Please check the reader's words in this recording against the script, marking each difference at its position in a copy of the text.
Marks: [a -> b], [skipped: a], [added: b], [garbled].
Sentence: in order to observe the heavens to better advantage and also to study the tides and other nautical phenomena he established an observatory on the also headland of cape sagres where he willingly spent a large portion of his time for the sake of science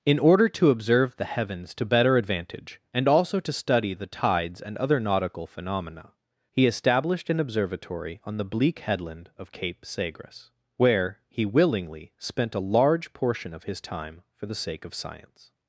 in order to observe the heavens to better advantage and also to study the tides and other nautical phenomena he established an observatory on the [also -> bleak] headland of cape sagres where he willingly spent a large portion of his time for the sake of science